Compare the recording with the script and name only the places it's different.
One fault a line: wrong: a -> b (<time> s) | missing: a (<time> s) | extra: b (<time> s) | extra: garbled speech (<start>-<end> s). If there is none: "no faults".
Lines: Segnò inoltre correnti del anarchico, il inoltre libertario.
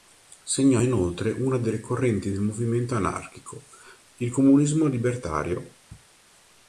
extra: una delle (1.3 s)
extra: movimento (2.4 s)
wrong: inoltre -> comunismo (4.3 s)